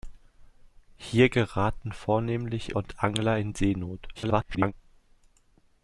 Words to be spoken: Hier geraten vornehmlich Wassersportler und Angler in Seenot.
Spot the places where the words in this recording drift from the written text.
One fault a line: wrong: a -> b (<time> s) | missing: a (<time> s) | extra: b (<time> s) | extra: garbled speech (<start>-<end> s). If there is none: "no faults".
missing: Wassersportler (2.7 s)
extra: garbled speech (4.1-4.7 s)